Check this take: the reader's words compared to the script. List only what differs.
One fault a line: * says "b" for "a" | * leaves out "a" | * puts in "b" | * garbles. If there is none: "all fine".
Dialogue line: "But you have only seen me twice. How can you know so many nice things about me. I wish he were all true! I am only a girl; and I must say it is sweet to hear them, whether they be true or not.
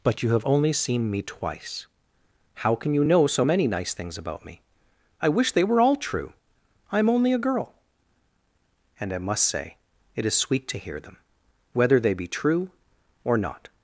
* says "they" for "he"